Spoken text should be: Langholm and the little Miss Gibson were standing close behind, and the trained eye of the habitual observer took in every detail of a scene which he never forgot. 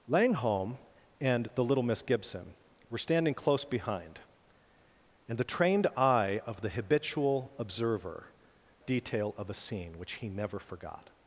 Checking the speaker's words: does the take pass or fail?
fail